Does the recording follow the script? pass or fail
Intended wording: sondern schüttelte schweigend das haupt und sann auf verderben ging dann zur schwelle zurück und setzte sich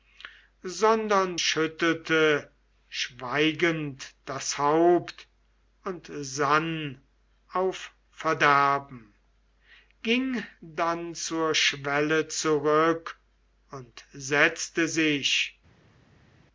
pass